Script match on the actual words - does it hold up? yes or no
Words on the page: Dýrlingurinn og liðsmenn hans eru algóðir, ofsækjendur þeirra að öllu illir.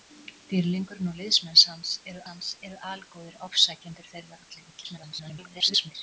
no